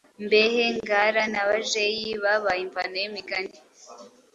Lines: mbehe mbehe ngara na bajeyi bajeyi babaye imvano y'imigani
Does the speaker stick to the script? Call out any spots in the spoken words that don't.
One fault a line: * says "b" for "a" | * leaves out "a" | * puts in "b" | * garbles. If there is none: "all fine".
* leaves out "mbehe"
* leaves out "bajeyi"